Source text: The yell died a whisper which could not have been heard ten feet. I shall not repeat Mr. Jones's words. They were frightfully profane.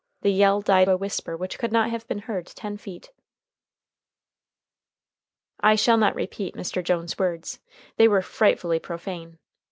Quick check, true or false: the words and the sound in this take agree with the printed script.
true